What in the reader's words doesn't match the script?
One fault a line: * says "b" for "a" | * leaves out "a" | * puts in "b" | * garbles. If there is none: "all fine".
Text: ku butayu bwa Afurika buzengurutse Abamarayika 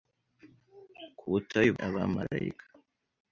* leaves out "bwa Afurika buzengurutse"